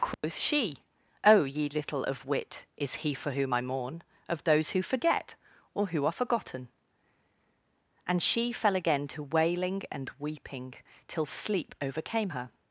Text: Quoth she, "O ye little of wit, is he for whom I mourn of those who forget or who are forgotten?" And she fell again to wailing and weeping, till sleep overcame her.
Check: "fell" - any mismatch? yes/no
no